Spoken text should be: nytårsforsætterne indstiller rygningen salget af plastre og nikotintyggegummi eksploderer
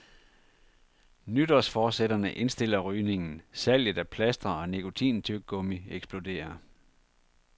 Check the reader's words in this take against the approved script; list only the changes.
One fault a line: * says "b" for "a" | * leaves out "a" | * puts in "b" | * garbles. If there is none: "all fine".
all fine